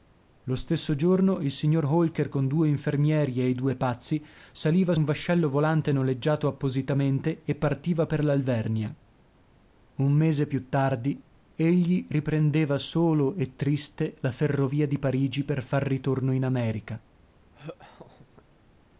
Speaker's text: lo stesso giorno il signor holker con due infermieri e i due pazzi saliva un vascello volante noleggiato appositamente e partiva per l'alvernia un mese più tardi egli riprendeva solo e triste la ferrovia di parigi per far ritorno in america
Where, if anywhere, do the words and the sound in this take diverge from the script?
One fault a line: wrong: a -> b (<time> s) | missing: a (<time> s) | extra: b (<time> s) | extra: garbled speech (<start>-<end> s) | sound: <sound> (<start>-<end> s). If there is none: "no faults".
sound: laugh (17.5-18.4 s)